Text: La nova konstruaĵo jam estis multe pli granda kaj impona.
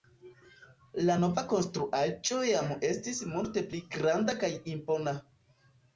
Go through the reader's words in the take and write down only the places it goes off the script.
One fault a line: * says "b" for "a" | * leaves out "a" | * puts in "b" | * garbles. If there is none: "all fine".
all fine